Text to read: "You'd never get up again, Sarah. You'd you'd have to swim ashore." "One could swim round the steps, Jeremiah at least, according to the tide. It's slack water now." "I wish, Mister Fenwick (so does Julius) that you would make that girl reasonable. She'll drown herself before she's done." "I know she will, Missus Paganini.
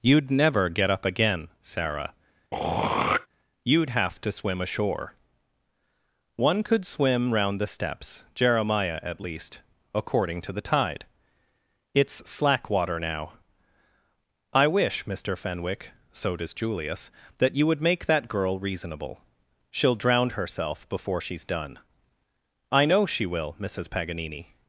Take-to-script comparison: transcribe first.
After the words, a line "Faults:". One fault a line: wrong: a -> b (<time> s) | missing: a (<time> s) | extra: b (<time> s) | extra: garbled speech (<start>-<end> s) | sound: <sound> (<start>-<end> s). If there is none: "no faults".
"You'd never get up again, Sarah. You'd have to swim ashore." "One could swim round the steps, Jeremiah at least, according to the tide. It's slack water now." "I wish, Mister Fenwick (so does Julius) that you would make that girl reasonable. She'll drown herself before she's done." "I know she will, Missus Paganini.
Faults:
sound: throat clearing (2.5-3.3 s)
missing: you'd (3.9 s)